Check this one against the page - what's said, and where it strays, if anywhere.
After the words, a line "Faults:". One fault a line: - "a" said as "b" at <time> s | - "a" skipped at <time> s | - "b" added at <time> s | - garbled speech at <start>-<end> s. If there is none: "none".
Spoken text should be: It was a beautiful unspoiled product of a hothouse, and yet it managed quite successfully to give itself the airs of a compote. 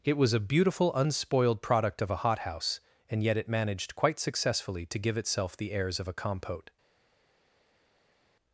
It was a beautiful unspoiled product of a hothouse, and yet it managed quite successfully to give itself the airs of a compote.
Faults:
none